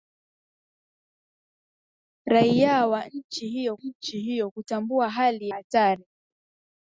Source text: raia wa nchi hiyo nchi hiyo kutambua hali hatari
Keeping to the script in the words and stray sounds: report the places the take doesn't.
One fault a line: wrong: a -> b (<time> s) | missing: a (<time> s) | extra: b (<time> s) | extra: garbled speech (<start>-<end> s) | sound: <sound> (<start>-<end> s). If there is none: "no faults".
no faults